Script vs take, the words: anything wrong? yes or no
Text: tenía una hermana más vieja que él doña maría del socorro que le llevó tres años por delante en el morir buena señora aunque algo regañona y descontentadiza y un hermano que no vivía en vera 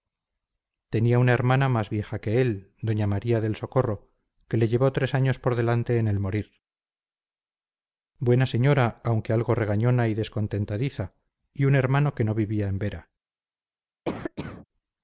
no